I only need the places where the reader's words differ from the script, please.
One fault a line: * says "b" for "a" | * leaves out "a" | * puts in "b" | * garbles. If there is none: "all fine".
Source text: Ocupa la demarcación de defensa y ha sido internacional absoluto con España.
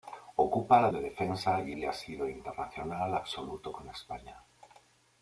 * leaves out "demarcación"
* puts in "y"